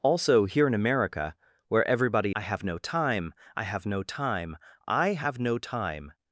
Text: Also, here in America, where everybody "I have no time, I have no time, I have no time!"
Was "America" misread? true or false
false